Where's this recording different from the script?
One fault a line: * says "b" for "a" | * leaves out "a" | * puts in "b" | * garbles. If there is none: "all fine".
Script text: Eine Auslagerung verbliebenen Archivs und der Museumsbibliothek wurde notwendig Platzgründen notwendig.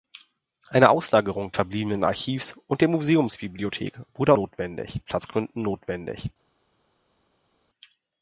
all fine